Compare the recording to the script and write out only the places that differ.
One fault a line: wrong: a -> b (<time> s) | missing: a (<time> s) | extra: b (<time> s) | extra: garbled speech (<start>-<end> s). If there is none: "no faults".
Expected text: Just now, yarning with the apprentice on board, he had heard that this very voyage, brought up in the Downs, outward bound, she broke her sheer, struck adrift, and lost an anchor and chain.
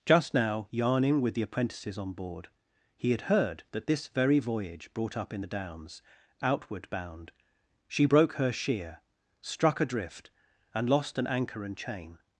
wrong: apprentice -> apprentices (1.4 s)